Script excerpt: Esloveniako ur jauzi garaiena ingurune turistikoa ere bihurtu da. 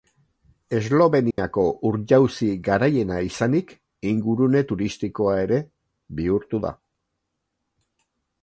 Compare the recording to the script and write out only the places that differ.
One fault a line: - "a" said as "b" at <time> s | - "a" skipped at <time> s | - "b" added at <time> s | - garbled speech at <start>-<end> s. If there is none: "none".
- "izanik" added at 3.3 s